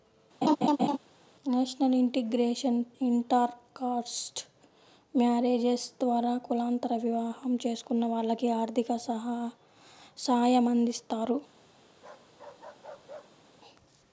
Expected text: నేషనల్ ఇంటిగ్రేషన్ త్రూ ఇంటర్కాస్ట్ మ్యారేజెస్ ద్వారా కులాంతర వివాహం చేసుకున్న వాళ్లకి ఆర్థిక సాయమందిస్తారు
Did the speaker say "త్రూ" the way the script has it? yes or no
no